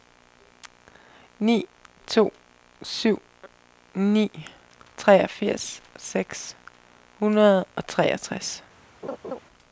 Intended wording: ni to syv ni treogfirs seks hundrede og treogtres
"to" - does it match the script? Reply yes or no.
yes